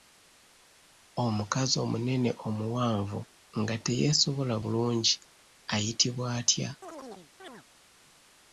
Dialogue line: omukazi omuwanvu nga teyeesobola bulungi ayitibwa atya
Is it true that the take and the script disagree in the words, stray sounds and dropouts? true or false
true